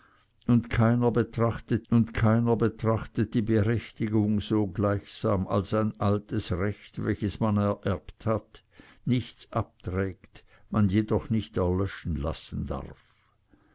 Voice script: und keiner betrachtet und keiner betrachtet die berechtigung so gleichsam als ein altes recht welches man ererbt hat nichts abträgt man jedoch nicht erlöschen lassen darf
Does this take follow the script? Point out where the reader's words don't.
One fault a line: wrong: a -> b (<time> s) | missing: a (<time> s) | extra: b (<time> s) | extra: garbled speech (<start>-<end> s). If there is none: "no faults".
no faults